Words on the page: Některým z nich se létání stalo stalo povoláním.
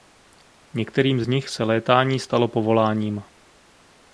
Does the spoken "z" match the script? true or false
true